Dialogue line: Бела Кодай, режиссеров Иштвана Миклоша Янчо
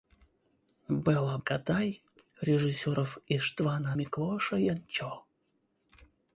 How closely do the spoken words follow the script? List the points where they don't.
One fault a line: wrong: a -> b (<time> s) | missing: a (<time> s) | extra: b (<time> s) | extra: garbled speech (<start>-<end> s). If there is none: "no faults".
no faults